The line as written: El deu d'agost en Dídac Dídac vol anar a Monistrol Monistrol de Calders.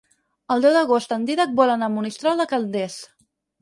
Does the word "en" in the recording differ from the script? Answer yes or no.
no